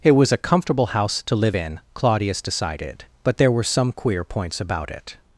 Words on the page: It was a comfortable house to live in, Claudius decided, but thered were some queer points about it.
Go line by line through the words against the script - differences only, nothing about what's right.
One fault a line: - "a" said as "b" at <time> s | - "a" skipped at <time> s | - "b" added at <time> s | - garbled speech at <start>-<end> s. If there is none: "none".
- "thered" said as "there" at 3.4 s